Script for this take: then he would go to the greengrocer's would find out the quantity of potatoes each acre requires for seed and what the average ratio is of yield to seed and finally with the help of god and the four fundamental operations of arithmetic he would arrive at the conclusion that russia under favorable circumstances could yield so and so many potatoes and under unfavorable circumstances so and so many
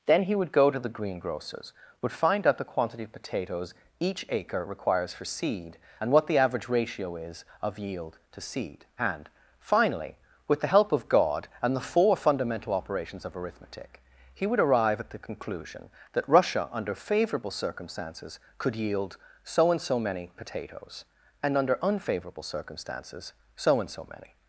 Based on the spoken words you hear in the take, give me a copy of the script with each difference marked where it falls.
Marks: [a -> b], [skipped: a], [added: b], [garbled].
then he would go to the greengrocer's would find out the quantity of potatoes each acre requires for seed and what the average ratio is of yield to seed and finally with the help of god and the four fundamental operations of arithmetic he would arrive at the conclusion that russia under favorable circumstances could yield so and so many potatoes and under unfavorable circumstances so and so many